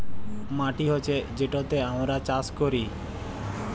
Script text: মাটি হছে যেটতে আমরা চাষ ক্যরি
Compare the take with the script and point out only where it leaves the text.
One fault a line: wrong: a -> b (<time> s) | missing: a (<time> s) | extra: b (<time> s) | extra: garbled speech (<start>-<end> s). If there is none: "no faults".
no faults